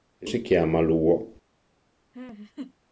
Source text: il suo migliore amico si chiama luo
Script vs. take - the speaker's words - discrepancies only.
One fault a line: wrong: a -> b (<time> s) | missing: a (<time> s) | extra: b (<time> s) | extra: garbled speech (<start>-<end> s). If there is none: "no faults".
missing: suo migliore amico (0.3 s)